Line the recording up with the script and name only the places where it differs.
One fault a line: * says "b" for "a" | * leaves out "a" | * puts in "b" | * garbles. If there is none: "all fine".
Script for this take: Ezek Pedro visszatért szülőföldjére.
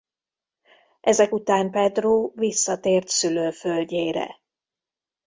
* puts in "után"